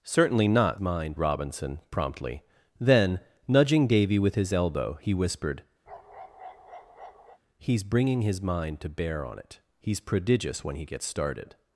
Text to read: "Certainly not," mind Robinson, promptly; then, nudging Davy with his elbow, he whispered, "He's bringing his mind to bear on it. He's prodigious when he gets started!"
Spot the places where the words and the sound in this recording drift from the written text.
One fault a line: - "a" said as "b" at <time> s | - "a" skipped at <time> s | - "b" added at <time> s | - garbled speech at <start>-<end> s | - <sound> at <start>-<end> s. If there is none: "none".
- bark at 5.9-7.4 s